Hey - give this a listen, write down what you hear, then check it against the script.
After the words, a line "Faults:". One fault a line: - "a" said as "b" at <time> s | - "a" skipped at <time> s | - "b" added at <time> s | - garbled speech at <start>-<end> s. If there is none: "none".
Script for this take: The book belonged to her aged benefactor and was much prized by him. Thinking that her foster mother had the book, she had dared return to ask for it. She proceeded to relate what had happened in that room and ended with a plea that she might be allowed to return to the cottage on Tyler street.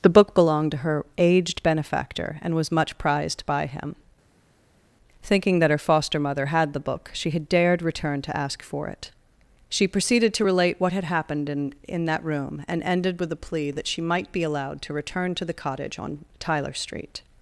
The book belonged to her aged benefactor and was much prized by him. Thinking that her foster mother had the book, she had dared return to ask for it. She proceeded to relate what had happened in in that room and ended with a plea that she might be allowed to return to the cottage on Tyler street.
Faults:
- "in" added at 11.9 s